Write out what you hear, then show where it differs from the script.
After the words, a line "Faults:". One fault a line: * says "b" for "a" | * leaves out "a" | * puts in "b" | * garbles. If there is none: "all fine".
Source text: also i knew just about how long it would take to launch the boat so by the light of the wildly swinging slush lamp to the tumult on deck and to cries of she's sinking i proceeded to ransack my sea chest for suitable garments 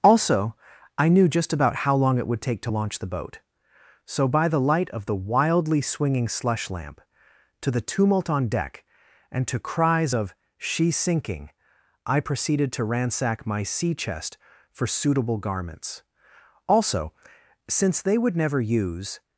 also i knew just about how long it would take to launch the boat so by the light of the wildly swinging slush lamp to the tumult on deck and to cries of she's sinking i proceeded to ransack my sea chest for suitable garments also since they would never use
Faults:
* puts in "also since they would never use"